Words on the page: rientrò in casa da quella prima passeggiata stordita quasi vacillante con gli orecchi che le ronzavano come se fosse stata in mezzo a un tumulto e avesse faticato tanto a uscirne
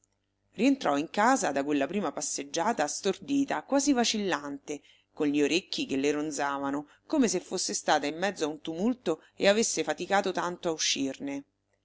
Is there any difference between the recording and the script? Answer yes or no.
no